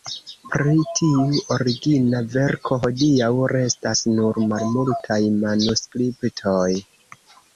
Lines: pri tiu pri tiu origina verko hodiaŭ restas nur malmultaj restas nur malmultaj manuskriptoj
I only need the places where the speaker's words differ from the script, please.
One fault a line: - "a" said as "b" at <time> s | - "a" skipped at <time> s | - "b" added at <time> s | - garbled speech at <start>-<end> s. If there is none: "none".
- "pri tiu" skipped at 1.2 s
- "restas nur malmultaj" skipped at 5.2 s